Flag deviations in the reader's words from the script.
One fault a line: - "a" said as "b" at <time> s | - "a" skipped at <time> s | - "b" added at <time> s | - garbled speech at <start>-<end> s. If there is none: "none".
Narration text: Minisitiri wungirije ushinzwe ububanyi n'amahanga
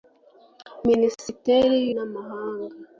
- "wungirije ushinzwe ububanyi" skipped at 1.8 s